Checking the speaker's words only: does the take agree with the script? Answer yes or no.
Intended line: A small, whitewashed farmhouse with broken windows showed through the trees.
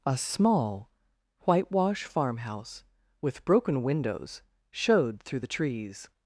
no